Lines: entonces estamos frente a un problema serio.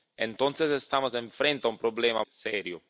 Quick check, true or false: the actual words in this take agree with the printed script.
true